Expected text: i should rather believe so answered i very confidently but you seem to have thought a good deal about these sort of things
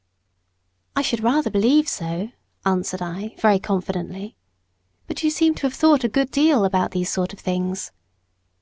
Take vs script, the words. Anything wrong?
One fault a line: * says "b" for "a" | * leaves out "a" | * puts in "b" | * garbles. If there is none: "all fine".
all fine